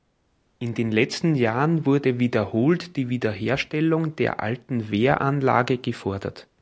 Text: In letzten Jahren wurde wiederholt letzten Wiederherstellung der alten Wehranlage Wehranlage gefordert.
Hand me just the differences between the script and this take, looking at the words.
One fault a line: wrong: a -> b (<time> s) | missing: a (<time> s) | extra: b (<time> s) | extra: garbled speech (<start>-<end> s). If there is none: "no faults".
extra: den (0.8 s)
wrong: letzten -> die (3.0 s)
missing: Wehranlage (5.8 s)